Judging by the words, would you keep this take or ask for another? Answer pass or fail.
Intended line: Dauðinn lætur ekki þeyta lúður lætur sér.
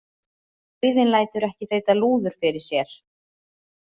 fail